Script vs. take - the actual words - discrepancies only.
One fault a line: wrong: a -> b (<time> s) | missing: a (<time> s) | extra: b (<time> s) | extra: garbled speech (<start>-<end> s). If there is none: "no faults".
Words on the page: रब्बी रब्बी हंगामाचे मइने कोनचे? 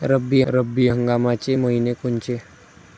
no faults